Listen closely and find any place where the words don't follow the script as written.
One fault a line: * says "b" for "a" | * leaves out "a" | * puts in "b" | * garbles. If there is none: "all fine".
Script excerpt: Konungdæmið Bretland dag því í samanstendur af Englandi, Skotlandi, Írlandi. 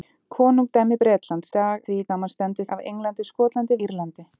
all fine